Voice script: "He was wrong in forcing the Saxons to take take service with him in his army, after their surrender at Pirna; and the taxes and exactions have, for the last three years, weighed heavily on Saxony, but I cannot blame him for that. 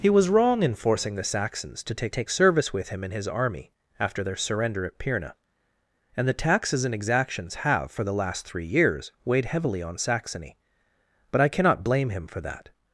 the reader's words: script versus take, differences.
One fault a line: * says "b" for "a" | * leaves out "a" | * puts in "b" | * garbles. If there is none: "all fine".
all fine